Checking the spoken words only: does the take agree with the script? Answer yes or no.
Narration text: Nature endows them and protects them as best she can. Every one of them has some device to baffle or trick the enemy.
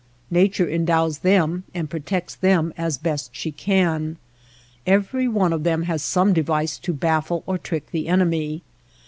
yes